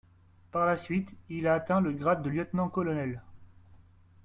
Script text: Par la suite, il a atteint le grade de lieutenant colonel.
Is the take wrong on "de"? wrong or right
right